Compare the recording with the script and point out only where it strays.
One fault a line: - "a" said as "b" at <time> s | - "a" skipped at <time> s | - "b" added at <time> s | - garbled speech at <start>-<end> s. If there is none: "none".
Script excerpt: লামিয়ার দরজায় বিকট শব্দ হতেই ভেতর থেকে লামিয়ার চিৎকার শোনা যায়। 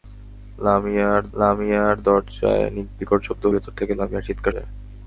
- "লামিয়ার" added at 1.3 s
- "হতেই" skipped at 3.4 s
- "শোনা" skipped at 4.5 s